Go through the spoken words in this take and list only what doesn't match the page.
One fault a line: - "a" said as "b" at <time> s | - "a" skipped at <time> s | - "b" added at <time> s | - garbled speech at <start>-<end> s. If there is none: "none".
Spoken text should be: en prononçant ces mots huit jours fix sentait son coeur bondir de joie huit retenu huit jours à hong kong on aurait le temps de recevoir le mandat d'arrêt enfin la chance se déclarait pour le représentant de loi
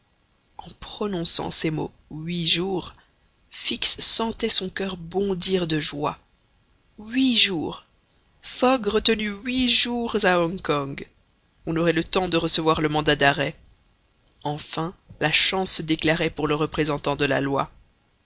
- "jours fogg" added at 7.3 s
- "la" added at 17.2 s